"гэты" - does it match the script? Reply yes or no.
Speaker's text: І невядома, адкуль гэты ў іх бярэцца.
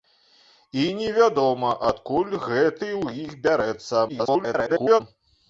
yes